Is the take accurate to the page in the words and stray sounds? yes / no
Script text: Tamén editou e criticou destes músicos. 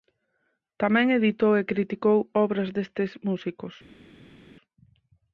no